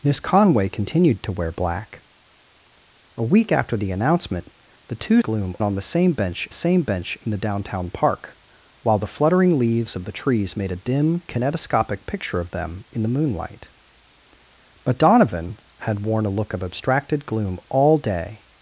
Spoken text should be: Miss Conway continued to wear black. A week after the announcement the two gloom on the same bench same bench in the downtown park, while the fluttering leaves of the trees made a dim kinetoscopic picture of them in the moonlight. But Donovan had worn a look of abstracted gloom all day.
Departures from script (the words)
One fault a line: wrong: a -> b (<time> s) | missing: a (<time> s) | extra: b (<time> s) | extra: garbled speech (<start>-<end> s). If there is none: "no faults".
no faults